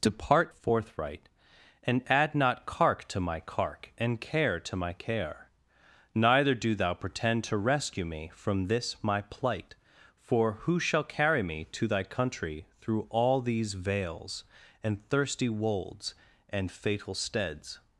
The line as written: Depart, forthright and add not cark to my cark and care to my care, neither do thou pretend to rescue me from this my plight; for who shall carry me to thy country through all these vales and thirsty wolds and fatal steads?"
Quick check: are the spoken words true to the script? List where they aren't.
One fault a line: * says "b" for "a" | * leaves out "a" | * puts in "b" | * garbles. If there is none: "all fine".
all fine